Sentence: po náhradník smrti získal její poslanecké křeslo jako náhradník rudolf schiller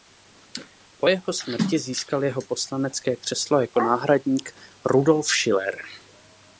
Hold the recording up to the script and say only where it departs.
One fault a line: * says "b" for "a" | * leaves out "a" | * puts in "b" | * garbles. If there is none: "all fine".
* says "jeho" for "náhradník"
* says "jeho" for "její"